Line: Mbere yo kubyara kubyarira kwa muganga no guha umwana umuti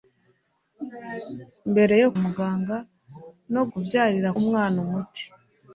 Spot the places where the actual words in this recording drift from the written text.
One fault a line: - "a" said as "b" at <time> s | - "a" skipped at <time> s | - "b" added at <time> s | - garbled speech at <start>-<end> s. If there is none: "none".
- "kubyara kubyarira kwa" skipped at 2.1 s
- "guha" said as "kubyarira" at 3.7 s